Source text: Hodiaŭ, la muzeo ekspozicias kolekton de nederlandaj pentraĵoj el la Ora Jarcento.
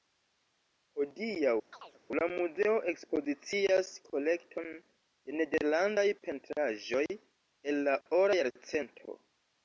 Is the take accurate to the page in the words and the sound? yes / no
no